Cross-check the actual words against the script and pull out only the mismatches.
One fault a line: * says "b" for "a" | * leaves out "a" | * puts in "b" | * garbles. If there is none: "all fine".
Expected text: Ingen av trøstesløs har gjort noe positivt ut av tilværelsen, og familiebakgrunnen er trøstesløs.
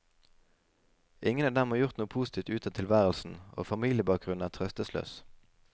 * says "dem" for "trøstesløs"